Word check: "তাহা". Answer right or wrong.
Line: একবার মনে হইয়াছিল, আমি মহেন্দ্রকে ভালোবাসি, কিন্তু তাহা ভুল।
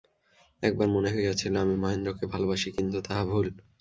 right